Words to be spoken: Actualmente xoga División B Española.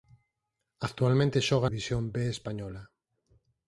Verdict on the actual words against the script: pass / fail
pass